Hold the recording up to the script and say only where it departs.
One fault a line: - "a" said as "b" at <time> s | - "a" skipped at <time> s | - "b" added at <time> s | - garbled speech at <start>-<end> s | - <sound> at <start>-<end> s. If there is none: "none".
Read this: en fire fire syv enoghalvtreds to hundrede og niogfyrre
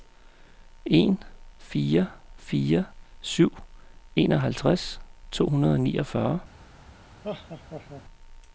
- laugh at 7.2-8.0 s